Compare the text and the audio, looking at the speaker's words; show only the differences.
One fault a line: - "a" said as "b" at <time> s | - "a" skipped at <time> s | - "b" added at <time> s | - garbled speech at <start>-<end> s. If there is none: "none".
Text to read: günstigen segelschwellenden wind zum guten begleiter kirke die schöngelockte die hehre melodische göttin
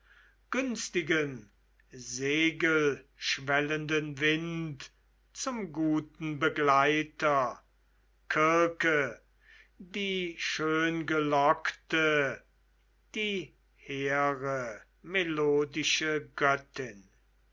none